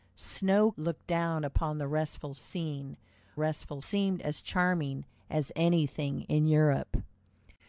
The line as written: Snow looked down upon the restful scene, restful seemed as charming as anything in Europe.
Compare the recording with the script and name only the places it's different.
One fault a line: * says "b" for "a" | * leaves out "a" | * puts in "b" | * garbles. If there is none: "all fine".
all fine